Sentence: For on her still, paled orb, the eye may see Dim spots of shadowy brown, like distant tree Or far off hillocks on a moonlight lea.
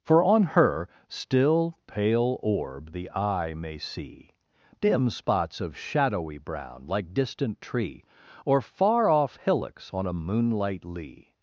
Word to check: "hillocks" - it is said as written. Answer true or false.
true